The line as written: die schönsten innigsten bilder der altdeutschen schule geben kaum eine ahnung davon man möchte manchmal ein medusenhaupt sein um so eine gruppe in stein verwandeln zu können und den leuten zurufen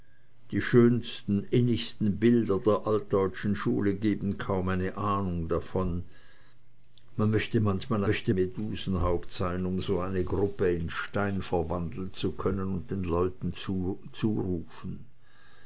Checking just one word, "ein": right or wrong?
wrong